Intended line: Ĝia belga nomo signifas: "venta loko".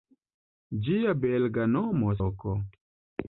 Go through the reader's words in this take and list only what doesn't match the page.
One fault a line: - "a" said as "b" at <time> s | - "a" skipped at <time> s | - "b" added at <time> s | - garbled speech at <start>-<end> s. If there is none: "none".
- "signifas venta" skipped at 2.1 s